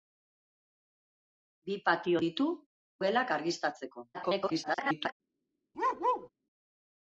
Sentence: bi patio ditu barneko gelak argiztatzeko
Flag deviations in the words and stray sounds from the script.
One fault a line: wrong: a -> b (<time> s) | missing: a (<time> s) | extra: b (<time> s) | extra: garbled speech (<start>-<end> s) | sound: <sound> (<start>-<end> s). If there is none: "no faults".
missing: barneko (2.5 s)
extra: garbled speech (4.1-5.1 s)
sound: bark (5.7-6.3 s)